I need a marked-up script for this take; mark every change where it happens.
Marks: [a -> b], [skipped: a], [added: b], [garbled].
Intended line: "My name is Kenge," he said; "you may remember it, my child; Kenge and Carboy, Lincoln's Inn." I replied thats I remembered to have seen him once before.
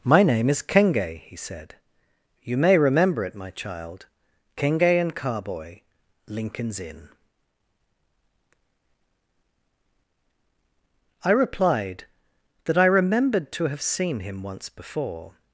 "My name is Kenge," he said; "you may remember it, my child; Kenge and Carboy, Lincoln's Inn." I replied [thats -> that] I remembered to have seen him once before.